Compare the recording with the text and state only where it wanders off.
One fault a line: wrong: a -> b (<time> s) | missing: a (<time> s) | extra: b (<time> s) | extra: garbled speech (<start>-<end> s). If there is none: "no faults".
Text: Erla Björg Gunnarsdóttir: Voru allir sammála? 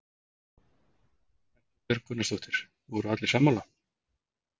no faults